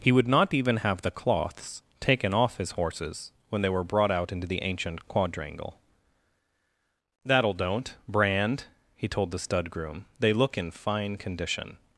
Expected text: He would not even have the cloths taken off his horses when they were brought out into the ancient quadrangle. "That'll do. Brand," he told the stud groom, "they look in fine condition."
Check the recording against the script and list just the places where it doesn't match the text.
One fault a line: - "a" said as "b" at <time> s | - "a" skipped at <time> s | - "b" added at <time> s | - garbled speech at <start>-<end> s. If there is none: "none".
- "do" said as "don't" at 7.5 s